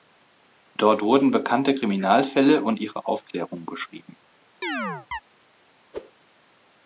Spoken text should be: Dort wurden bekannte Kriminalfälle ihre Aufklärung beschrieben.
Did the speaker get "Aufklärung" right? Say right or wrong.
right